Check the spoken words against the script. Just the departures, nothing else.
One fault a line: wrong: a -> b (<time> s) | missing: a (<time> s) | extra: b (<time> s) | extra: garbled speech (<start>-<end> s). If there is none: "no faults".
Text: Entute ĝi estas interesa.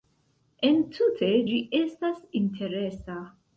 no faults